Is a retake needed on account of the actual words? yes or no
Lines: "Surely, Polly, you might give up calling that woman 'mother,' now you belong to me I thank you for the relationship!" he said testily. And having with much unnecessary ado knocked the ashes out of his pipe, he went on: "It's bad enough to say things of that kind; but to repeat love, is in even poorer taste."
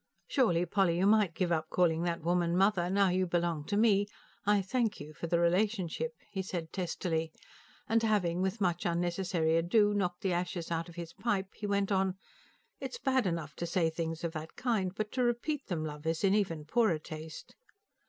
yes